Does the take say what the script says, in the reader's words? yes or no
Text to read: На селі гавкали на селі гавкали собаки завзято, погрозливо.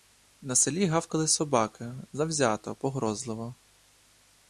no